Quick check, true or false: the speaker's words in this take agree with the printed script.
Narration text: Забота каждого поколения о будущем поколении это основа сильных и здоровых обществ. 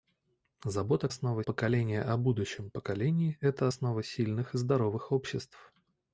false